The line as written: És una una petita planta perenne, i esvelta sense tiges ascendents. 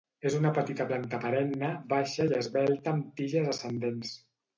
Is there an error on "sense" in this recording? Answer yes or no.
yes